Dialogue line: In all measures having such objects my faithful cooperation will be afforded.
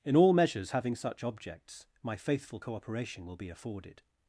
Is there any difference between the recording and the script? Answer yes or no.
no